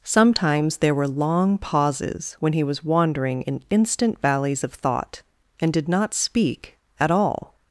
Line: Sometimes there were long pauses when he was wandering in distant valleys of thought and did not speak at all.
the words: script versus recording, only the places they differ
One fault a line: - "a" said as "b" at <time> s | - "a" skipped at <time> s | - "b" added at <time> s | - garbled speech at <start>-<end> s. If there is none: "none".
- "distant" said as "instant" at 3.7 s